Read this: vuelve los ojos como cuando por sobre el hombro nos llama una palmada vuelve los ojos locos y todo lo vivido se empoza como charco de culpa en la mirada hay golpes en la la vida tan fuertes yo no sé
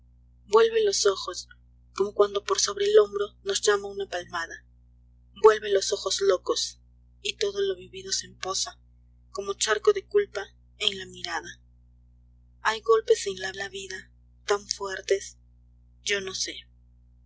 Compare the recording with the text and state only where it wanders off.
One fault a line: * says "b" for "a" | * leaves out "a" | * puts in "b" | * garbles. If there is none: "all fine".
all fine